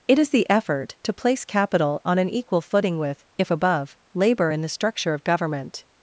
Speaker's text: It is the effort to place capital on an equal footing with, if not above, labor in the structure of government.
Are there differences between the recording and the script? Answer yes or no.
yes